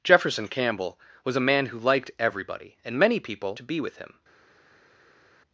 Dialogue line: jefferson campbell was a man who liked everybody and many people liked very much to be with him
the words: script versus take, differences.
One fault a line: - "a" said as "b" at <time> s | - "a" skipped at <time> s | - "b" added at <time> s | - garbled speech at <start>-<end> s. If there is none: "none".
- "liked very much" skipped at 3.6 s